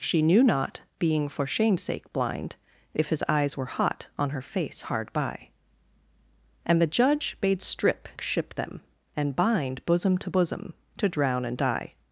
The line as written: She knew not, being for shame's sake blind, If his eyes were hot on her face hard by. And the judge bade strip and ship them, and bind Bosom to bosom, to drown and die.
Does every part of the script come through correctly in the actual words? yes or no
no